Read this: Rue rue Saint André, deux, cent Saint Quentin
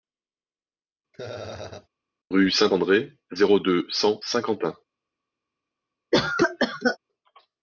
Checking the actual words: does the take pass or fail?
fail